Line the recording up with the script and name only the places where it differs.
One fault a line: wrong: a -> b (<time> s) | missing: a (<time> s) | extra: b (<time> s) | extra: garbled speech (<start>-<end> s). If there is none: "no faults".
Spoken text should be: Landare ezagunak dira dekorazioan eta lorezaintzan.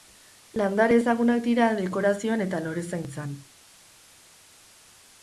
no faults